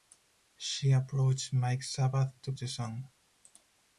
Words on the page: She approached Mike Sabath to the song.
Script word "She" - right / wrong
right